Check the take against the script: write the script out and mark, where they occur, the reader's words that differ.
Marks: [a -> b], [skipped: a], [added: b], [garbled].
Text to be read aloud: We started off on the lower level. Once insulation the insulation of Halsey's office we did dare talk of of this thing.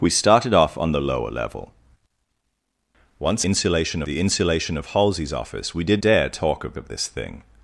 We started off on the lower level. Once insulation the insulation of Halsey's office we did dare talk of of this thing.